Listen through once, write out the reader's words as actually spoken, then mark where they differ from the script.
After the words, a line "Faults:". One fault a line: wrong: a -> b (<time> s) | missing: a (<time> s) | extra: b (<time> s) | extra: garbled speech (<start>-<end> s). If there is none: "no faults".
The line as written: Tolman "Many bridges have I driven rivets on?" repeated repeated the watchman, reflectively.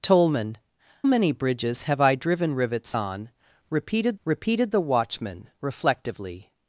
Tolman "Many bridges have I driven rivets on?" repeated repeated the watchman, reflectively.
Faults:
no faults